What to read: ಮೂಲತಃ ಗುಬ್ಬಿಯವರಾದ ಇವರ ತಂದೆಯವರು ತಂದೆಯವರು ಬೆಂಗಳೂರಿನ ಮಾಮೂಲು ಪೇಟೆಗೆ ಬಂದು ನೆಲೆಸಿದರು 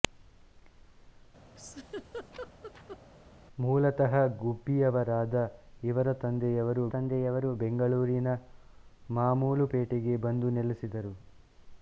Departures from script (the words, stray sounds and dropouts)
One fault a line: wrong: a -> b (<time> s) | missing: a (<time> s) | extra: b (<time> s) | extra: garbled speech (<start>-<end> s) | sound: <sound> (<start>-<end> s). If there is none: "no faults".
sound: laugh (1.6-3.0 s)